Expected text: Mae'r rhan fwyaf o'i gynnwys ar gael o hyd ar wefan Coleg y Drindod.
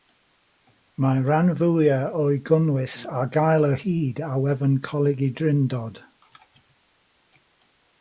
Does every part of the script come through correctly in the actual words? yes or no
yes